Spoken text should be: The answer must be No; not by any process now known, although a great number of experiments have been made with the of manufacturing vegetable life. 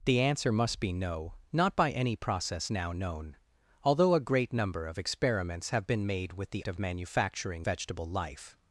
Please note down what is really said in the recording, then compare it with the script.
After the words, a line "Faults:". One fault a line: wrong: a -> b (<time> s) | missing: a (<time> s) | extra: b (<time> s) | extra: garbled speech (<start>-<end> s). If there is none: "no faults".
The answer must be No; not by any process now known, although a great number of experiments have been made with the of manufacturing vegetable life.
Faults:
no faults